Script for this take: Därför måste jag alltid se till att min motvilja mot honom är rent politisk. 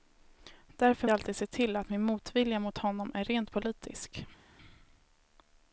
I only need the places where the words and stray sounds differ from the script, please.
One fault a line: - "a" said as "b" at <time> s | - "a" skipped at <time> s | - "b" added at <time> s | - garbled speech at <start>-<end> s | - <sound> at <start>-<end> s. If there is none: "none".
- "måste" skipped at 1.1 s